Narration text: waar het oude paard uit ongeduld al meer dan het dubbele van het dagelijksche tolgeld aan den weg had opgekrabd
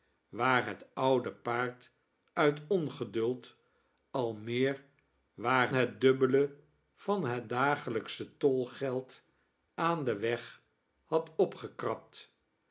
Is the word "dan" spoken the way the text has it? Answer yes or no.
no